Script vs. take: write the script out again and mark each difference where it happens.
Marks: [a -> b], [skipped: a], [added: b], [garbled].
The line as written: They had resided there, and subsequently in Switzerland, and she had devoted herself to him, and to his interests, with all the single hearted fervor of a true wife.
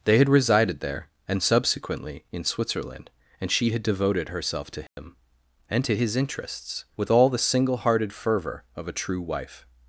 They had resided there, and subsequently in Switzerland, and she had devoted herself to him, and to his interests, with all the single hearted fervor of a true wife.